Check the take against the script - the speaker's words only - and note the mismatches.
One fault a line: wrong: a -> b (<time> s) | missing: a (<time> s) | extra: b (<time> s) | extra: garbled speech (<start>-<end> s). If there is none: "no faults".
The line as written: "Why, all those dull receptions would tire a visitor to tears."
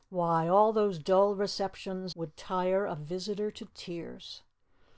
no faults